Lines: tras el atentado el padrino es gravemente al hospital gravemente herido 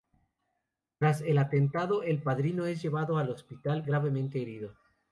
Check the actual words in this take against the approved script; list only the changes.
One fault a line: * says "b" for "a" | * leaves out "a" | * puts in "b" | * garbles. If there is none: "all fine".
* says "llevado" for "gravemente"